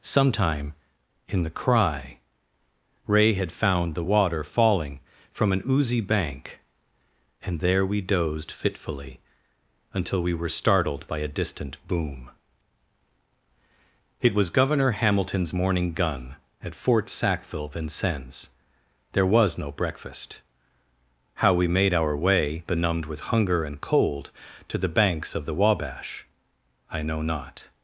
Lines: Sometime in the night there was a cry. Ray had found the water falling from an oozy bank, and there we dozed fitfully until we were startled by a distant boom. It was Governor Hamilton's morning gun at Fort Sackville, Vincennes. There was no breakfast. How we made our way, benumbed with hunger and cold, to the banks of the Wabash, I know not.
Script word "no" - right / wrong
right